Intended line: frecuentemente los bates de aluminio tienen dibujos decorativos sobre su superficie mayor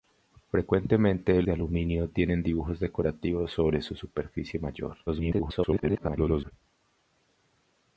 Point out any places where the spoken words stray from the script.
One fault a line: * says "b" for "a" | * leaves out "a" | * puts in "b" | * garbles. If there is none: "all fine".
* leaves out "los bates"
* garbles